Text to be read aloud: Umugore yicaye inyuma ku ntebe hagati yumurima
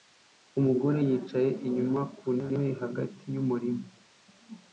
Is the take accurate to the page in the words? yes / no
yes